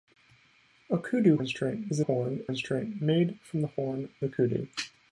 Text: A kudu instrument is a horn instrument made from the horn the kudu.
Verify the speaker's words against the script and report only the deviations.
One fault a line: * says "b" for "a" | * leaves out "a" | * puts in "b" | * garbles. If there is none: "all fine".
all fine